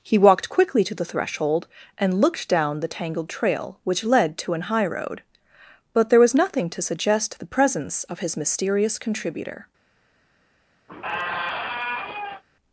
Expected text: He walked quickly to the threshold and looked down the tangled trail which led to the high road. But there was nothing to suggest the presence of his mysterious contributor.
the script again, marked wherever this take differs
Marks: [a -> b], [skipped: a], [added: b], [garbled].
He walked quickly to the threshold and looked down the tangled trail which led to [the -> an] high road. But there was nothing to suggest the presence of his mysterious contributor.